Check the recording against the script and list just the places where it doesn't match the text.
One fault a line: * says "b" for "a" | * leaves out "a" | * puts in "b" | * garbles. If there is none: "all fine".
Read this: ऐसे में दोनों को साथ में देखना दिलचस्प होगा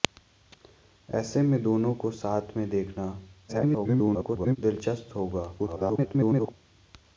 * garbles
* garbles